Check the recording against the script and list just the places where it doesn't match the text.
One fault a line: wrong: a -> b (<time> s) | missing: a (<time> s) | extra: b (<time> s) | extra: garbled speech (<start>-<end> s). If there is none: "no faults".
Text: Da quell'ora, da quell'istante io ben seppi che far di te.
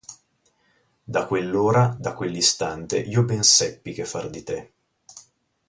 no faults